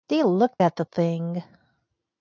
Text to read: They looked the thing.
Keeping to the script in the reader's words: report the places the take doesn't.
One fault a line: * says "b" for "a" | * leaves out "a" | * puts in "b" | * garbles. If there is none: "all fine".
* puts in "at"